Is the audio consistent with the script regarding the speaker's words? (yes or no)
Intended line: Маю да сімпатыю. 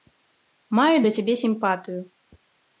no